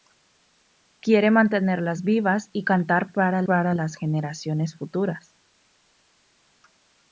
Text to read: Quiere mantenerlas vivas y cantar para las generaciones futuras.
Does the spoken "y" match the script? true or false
true